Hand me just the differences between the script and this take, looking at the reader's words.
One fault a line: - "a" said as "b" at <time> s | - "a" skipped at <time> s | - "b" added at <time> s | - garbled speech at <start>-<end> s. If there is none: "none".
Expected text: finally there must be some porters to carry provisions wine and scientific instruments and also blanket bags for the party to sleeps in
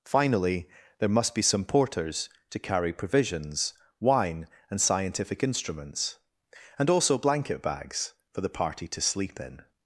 - "sleeps" said as "sleep" at 9.0 s